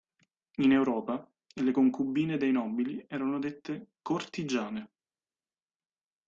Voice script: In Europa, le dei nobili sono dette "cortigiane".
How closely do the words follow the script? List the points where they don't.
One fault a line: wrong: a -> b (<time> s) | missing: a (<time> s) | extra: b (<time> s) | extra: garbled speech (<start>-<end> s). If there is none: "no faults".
extra: concubine (1.7 s)
wrong: sono -> erano (3.1 s)